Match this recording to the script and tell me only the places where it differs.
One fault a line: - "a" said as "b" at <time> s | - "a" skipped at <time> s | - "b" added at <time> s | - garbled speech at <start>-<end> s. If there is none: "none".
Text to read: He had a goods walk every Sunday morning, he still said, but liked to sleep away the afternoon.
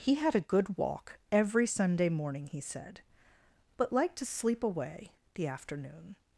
- "goods" said as "good" at 0.4 s
- "still" skipped at 2.6 s